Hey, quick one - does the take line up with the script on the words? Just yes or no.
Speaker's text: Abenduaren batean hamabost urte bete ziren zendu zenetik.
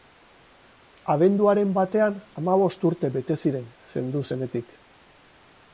yes